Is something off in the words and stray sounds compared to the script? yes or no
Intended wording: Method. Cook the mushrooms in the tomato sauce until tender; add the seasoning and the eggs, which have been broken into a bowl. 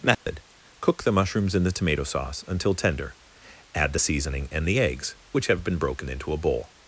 yes